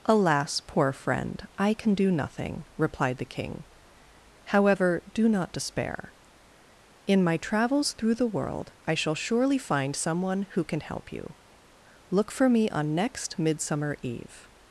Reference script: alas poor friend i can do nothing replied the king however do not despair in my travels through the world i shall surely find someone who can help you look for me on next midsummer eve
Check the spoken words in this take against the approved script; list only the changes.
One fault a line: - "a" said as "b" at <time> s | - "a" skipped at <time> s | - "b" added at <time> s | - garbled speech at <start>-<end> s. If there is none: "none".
none